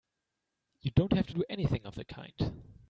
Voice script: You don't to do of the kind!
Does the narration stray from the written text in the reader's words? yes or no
yes